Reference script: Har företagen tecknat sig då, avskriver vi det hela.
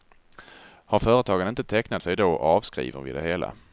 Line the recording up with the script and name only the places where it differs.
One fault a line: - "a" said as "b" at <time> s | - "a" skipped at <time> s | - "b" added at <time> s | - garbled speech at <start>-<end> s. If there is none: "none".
- "inte" added at 1.5 s